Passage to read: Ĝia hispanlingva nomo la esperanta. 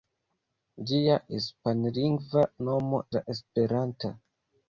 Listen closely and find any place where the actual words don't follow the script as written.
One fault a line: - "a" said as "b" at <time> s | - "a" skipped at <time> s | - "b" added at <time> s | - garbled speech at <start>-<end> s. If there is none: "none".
none